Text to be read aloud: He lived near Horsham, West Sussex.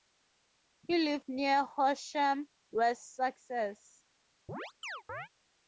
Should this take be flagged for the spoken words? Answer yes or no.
no